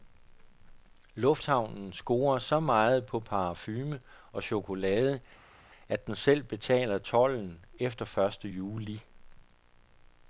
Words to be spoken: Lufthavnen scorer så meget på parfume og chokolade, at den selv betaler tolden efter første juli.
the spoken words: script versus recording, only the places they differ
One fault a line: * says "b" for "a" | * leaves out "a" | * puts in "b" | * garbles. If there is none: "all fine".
all fine